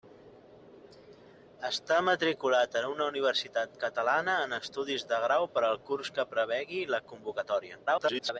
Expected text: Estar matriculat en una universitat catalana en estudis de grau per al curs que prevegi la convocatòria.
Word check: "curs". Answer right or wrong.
right